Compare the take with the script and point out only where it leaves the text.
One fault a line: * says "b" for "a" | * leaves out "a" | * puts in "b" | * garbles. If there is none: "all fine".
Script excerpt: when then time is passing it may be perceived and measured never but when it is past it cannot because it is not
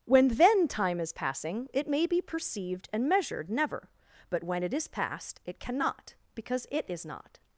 all fine